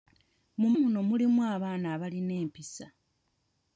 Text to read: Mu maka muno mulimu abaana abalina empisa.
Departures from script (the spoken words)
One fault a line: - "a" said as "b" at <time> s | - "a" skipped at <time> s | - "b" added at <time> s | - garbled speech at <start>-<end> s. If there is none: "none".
- "maka" skipped at 0.7 s